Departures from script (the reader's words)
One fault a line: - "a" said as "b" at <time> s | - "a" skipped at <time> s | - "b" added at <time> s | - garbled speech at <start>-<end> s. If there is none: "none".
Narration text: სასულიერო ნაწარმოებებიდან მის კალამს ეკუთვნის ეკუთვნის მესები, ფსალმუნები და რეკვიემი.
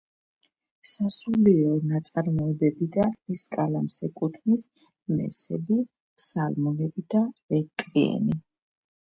- "ეკუთვნის" skipped at 4.7 s